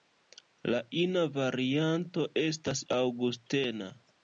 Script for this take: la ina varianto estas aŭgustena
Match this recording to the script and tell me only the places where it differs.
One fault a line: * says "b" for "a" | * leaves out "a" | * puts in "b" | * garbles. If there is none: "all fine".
all fine